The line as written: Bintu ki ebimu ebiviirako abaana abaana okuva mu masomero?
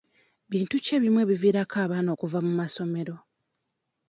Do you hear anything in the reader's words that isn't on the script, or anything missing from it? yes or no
yes